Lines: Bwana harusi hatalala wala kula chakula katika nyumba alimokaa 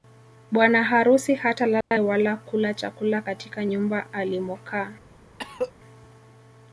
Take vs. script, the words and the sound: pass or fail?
fail